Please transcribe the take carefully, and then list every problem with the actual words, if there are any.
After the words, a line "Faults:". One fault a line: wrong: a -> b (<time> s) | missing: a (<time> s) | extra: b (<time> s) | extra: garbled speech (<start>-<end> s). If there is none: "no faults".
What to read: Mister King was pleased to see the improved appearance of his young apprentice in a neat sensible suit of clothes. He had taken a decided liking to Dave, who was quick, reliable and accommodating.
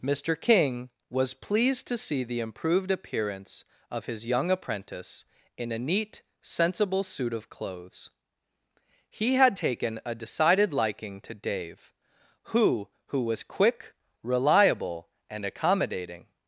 Mister King was pleased to see the improved appearance of his young apprentice in a neat sensible suit of clothes. He had taken a decided liking to Dave, who who was quick, reliable and accommodating.
Faults:
extra: who (13.1 s)